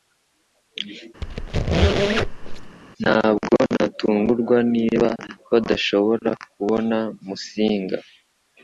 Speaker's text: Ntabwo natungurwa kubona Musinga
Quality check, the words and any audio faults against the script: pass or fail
fail